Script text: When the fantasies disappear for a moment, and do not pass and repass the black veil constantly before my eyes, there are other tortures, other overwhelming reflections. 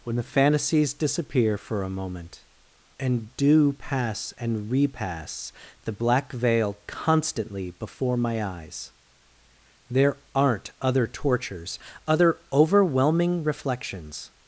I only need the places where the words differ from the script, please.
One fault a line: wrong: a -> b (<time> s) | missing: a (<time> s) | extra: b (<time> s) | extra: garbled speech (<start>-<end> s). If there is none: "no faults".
missing: not (3.7 s)
wrong: are -> aren't (10.3 s)